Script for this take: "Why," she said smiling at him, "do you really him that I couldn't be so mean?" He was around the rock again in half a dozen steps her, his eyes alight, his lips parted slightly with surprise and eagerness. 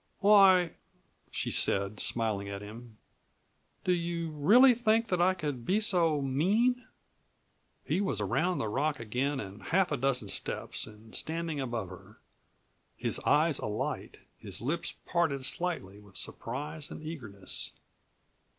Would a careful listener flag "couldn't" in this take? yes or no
yes